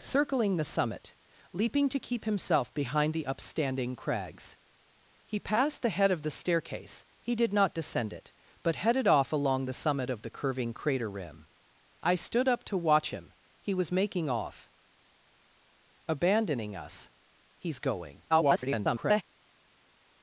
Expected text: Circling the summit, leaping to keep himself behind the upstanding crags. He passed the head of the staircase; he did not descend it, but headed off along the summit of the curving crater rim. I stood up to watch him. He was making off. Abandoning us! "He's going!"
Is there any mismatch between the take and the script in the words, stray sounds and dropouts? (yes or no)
yes